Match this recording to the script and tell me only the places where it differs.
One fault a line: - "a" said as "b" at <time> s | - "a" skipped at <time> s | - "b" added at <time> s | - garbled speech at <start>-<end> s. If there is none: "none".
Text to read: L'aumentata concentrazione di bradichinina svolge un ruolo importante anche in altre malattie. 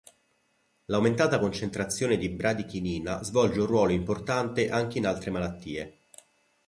none